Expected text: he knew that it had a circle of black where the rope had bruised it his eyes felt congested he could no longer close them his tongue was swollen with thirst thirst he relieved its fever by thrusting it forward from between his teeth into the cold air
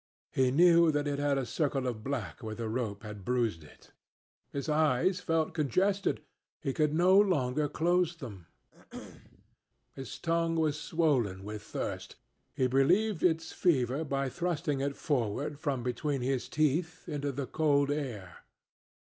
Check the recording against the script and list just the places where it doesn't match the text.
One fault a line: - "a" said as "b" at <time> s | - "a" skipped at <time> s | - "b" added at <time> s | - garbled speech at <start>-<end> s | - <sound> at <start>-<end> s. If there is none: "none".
- throat clearing at 8.7-9.6 s
- "thirst" skipped at 12.2 s